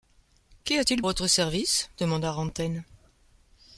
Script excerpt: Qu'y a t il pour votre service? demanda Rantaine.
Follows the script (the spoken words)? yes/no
no